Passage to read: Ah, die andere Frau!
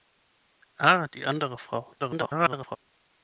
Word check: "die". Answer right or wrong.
right